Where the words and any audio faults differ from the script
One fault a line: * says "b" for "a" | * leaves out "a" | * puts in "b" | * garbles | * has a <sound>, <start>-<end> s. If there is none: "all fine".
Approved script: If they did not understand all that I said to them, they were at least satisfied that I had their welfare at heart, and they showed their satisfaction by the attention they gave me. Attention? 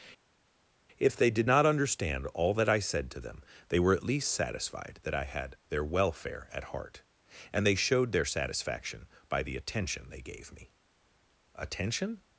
all fine